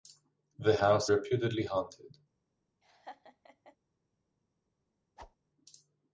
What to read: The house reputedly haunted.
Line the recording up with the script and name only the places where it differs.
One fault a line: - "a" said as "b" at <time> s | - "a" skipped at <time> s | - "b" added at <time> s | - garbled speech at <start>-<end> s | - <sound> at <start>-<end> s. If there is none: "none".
- laugh at 2.8-3.8 s
- whoosh at 5.2-5.4 s